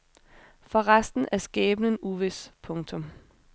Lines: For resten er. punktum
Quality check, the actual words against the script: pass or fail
fail